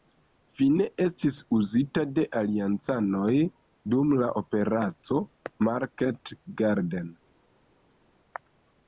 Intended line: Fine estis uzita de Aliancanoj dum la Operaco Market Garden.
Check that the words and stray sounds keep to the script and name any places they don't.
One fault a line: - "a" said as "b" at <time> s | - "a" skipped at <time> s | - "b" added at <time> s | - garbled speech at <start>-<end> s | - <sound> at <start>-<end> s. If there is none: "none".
none